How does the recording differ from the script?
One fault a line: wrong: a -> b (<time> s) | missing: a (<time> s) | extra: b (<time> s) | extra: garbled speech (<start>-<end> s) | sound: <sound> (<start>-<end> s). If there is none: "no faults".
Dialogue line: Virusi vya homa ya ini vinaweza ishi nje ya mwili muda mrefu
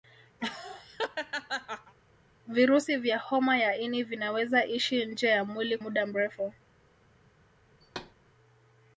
sound: laugh (0.4-1.9 s)
sound: thud (7.8-8.1 s)